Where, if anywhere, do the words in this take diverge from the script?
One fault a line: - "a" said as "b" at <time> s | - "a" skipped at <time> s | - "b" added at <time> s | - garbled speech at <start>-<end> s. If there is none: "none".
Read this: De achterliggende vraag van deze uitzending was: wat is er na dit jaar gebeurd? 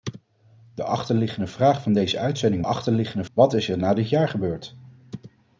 - "was" said as "achterliggende" at 2.6 s